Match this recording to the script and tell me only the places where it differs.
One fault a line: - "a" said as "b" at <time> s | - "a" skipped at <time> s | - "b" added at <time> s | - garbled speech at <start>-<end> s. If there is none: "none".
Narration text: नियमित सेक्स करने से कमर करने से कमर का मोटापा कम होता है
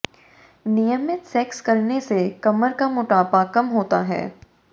- "करने से कमर" skipped at 2.7 s